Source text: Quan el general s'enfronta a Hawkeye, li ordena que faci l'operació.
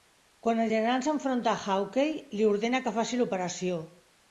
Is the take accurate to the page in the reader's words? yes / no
yes